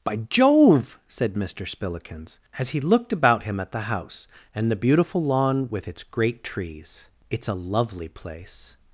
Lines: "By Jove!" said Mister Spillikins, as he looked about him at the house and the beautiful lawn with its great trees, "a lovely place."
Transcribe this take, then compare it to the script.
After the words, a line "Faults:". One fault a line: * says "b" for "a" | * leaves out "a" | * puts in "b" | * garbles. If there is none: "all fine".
"By Jove!" said Mister Spillikins, as he looked about him at the house and the beautiful lawn with its great trees, "it's a lovely place."
Faults:
* puts in "it's"